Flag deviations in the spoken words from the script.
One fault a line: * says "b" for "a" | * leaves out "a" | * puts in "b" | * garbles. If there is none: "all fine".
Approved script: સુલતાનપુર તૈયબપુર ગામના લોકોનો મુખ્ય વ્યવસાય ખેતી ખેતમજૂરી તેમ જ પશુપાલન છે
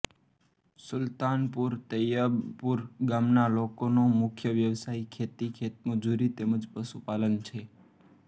all fine